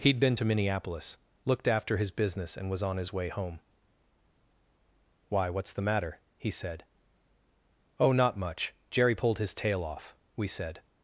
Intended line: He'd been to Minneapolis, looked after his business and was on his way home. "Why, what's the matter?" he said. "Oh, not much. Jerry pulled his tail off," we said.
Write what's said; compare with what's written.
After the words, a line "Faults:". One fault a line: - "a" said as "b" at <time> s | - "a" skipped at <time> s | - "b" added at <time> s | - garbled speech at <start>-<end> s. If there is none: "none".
He'd been to Minneapolis, looked after his business and was on his way home. "Why, what's the matter?" he said. "Oh, not much. Jerry pulled his tail off," we said.
Faults:
none